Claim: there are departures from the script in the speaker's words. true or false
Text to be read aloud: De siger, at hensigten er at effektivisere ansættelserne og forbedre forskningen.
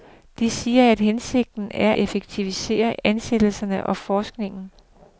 true